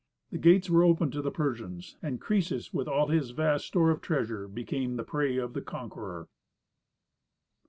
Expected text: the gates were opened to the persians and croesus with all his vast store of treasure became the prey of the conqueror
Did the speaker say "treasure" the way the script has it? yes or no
yes